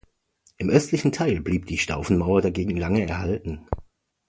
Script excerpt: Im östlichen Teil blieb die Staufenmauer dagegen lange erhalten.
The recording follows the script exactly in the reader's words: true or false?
true